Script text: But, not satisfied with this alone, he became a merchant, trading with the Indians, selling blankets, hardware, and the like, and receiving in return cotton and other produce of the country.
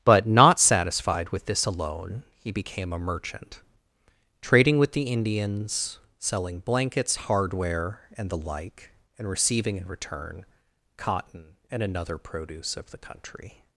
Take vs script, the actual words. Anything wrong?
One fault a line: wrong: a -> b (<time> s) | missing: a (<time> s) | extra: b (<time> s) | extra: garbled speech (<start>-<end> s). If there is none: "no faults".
wrong: other -> another (11.8 s)